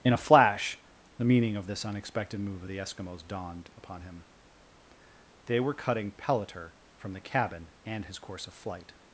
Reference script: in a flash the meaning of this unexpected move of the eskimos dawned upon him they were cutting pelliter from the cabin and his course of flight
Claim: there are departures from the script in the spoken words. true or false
false